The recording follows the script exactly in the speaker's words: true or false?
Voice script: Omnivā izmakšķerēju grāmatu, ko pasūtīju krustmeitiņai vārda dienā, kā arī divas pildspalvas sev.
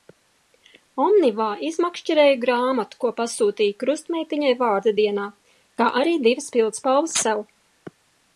true